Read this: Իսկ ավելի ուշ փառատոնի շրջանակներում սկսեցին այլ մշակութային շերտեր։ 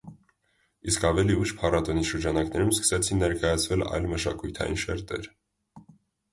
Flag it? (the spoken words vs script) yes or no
yes